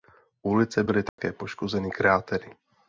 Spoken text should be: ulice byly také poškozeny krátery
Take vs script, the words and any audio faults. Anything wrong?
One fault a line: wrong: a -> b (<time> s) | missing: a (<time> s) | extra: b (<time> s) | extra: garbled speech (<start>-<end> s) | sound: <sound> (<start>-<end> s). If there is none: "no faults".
sound: dropout (1.1-1.2 s)